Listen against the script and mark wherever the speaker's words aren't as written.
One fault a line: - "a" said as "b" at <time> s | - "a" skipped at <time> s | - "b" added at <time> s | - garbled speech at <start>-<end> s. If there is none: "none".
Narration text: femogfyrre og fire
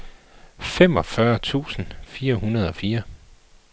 - "tusind fire hundrede" added at 1.4 s